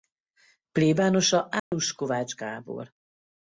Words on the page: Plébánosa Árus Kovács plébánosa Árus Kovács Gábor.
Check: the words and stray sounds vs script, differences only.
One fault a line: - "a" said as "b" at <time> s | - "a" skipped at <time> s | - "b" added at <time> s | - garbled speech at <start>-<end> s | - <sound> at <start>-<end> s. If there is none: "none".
- dropout at 1.6-1.7 s
- "plébánosa Árus Kovács" skipped at 2.4 s